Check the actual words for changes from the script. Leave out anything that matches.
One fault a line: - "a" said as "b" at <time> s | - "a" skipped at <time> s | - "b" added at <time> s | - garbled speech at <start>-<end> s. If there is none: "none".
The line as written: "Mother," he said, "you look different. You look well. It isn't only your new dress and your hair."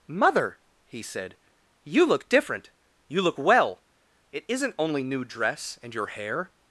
- "your" skipped at 5.0 s